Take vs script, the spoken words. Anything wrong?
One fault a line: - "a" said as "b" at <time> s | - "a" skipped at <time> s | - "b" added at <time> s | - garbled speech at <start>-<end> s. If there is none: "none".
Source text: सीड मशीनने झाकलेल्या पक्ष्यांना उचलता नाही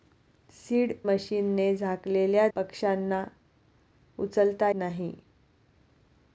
none